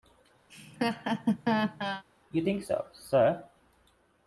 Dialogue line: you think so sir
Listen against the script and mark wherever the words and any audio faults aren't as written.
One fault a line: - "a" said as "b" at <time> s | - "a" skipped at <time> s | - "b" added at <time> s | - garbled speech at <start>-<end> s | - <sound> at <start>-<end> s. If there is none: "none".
- laugh at 0.5-2.0 s